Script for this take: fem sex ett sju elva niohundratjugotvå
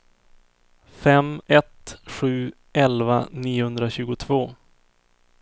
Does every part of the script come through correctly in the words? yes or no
no